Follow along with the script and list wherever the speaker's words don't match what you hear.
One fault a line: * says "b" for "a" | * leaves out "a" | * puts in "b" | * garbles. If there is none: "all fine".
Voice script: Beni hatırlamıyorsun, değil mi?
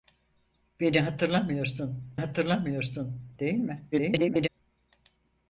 * puts in "hatırlamıyorsun"
* garbles